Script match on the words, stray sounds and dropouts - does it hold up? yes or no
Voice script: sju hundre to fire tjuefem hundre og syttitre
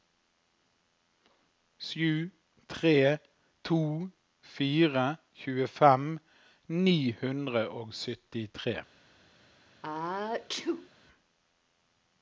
no